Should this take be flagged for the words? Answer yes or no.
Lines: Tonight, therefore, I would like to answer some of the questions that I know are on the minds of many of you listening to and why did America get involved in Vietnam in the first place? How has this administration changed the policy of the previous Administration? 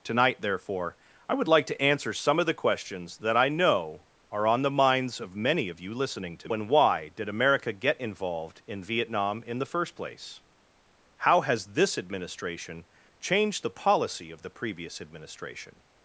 no